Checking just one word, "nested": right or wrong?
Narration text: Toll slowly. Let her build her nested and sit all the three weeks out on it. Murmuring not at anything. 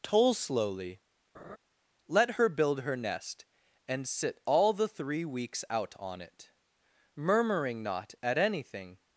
wrong